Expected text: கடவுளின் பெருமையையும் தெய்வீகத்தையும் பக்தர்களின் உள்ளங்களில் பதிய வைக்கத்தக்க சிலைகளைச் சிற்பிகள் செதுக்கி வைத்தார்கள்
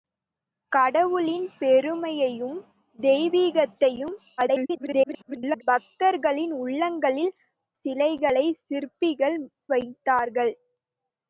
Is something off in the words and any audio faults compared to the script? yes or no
yes